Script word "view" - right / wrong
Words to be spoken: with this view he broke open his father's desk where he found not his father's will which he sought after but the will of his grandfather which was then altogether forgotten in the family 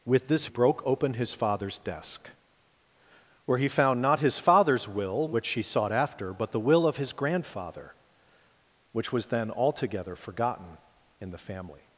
wrong